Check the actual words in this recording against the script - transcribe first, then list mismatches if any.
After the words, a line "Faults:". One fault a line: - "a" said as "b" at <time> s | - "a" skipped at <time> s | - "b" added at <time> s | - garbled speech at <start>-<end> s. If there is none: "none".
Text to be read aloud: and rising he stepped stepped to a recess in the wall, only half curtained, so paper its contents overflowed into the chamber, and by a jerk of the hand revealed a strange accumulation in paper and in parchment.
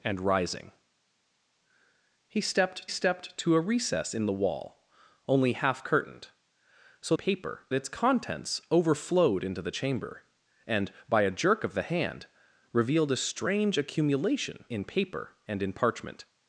and rising he stepped stepped to a recess in the wall, only half curtained, so paper its contents overflowed into the chamber, and by a jerk of the hand revealed a strange accumulation in paper and in parchment.
Faults:
none